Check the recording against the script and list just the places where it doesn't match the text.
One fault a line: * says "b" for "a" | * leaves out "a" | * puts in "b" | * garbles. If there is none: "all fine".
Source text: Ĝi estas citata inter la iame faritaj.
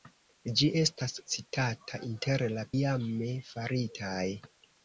all fine